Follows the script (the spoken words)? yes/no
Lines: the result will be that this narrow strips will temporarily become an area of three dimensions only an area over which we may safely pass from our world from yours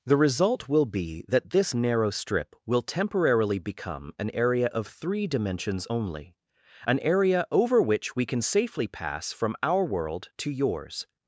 no